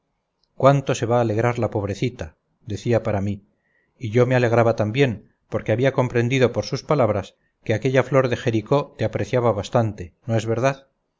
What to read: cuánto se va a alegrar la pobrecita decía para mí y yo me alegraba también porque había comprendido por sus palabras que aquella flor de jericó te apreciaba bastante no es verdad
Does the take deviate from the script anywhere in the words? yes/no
no